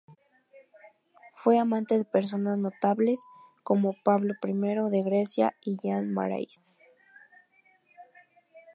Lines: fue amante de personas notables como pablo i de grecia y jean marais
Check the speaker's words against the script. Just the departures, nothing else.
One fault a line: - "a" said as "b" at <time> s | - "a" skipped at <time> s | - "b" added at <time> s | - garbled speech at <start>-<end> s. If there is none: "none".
none